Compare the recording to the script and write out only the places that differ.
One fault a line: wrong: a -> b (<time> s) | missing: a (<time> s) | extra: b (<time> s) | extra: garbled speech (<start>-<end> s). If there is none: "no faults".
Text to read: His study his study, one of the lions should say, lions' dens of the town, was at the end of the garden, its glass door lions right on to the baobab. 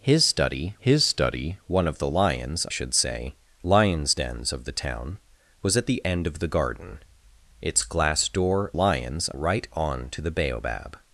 no faults